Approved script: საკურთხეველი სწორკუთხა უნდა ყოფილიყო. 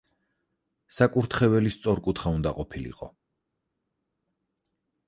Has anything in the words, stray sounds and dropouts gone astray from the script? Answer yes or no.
no